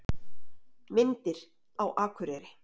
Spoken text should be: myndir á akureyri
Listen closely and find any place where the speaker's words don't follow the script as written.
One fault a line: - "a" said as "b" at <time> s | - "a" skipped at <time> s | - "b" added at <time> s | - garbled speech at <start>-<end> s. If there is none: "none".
none